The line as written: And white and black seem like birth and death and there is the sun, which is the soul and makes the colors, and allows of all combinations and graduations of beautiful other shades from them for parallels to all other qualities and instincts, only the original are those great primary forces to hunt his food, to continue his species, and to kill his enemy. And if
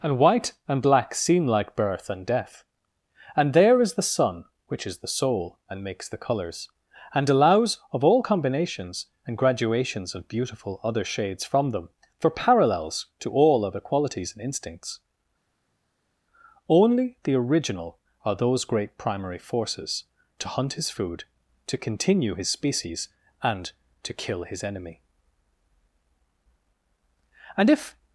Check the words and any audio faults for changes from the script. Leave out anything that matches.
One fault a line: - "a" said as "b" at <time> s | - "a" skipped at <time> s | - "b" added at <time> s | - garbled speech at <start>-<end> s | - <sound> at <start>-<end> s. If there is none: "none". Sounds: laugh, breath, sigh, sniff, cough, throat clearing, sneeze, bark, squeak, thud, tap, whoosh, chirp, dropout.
none